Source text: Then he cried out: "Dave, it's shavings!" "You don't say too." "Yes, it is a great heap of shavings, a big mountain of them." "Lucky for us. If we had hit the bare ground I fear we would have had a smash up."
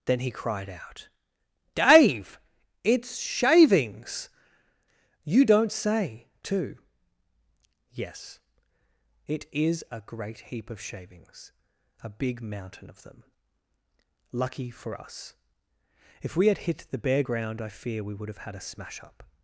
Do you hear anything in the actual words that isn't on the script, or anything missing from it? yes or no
no